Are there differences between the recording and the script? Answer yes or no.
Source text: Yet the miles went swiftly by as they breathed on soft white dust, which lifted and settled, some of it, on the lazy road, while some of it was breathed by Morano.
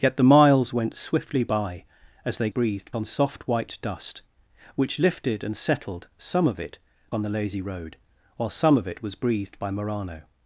no